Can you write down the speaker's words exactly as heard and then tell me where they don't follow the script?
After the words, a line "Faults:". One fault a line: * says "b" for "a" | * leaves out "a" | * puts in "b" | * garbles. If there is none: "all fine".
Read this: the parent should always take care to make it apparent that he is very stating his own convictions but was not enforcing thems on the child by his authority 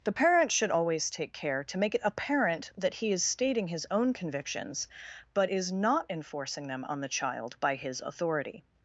the parent should always take care to make it apparent that he is stating his own convictions but is not enforcing them on the child by his authority
Faults:
* leaves out "very"
* says "is" for "was"
* says "them" for "thems"